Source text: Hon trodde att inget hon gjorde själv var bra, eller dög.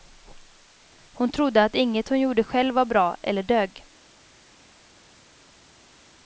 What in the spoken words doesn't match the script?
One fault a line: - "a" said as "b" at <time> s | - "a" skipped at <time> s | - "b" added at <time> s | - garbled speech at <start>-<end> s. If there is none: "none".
none